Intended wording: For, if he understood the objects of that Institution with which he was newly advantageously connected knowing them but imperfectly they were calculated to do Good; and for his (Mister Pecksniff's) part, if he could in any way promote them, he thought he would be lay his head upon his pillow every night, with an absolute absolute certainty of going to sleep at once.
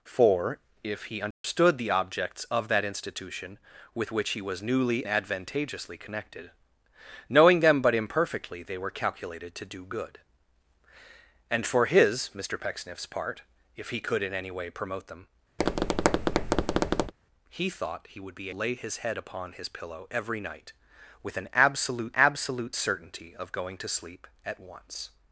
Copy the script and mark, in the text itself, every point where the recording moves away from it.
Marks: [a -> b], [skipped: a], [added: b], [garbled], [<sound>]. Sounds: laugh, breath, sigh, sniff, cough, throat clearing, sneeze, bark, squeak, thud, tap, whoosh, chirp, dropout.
For, if he understood [dropout] the objects of that Institution with which he was newly advantageously connected knowing them but imperfectly they were calculated to do Good; and for his (Mister Pecksniff's) part, if he could in any way promote them, [tap] he thought he would be lay his head upon his pillow every night, with an absolute absolute certainty of going to sleep at once.